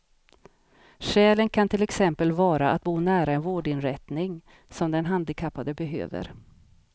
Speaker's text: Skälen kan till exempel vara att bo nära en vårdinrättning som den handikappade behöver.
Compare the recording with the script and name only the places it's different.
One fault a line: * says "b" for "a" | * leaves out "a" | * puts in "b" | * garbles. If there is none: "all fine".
all fine